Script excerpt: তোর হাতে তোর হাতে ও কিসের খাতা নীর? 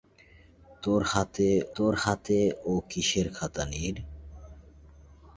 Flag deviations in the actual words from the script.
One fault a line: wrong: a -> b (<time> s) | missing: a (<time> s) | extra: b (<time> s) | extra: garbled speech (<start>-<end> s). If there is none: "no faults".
no faults